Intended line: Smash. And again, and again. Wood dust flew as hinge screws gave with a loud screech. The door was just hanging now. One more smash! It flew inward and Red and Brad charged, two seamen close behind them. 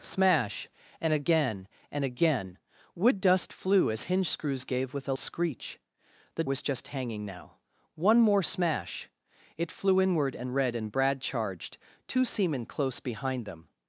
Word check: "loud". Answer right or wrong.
wrong